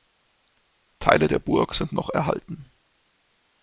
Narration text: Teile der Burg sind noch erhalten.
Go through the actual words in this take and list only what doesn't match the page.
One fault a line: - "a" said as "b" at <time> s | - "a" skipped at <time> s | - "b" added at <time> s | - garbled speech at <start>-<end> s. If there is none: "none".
none